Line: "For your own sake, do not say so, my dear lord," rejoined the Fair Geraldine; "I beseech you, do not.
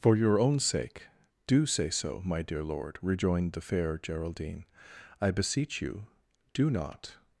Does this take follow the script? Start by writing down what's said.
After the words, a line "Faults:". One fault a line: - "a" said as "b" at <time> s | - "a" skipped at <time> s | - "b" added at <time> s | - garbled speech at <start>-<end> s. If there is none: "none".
"For your own sake, do say so, my dear lord," rejoined the Fair Geraldine; "I beseech you, do not.
Faults:
- "not" skipped at 1.7 s